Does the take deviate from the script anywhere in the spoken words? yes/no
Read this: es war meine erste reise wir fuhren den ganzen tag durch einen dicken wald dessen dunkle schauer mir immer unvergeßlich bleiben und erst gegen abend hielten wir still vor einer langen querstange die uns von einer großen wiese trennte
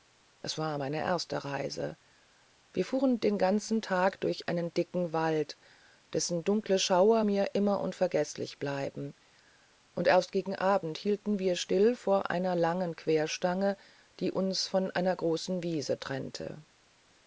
no